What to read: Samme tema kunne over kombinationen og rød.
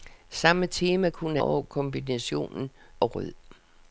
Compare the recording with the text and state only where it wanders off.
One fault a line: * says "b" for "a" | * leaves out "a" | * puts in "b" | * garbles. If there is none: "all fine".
all fine